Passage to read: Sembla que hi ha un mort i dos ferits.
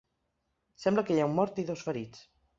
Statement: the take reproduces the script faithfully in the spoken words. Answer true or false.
true